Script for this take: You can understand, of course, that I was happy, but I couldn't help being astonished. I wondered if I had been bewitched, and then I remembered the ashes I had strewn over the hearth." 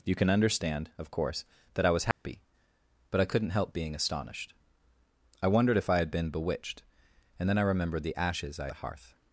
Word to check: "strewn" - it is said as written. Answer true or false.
false